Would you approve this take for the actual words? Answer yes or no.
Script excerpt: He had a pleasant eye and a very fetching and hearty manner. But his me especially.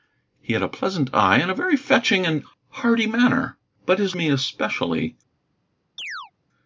yes